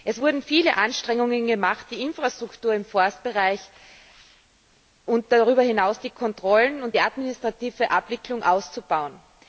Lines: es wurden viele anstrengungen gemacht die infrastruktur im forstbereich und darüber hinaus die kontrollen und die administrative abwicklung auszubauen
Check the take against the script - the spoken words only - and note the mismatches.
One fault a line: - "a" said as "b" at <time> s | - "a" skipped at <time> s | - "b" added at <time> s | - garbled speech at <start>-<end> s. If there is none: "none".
none